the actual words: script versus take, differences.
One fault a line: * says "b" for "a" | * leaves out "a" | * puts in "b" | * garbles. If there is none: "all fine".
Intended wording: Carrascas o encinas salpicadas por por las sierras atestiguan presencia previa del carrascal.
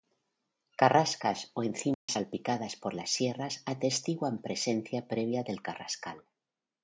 * leaves out "por"